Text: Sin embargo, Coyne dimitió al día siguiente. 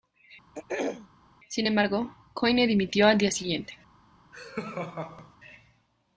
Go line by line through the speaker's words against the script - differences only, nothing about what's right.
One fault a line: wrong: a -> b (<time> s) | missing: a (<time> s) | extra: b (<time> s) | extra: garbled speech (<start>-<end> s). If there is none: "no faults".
no faults